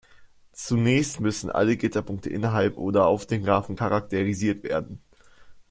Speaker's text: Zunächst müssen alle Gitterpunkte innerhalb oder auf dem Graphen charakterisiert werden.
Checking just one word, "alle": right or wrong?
right